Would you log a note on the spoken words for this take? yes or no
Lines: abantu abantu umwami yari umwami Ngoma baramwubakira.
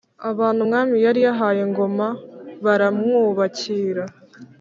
yes